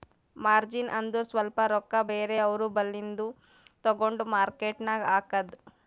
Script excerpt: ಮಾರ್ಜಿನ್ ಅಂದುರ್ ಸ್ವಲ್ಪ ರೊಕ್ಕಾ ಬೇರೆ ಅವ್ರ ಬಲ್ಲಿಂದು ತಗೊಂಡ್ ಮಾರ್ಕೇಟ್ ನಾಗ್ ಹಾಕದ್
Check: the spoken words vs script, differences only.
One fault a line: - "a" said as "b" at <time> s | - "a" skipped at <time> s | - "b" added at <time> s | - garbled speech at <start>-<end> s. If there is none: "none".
none